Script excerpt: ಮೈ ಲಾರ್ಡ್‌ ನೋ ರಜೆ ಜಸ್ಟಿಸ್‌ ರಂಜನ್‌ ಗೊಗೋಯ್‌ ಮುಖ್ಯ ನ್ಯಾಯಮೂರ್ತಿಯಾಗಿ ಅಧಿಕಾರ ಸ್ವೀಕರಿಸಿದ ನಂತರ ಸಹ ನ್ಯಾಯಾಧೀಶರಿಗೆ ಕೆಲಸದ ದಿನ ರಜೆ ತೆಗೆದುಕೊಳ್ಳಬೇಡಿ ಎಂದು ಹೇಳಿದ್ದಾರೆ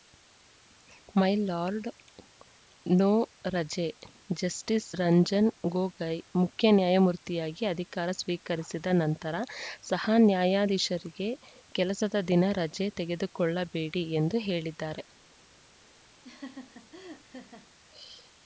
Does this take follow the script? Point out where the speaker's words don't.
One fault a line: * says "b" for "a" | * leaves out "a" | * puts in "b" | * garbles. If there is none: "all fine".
all fine